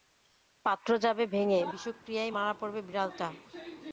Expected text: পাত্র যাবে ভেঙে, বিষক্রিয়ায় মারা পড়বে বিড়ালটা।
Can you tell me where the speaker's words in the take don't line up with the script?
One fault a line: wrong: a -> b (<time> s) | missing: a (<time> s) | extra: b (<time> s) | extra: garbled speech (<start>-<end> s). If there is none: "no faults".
no faults